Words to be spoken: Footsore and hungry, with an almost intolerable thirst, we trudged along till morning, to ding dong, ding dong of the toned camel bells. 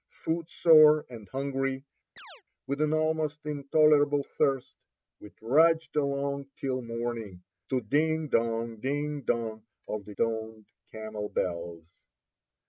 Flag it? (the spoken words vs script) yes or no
no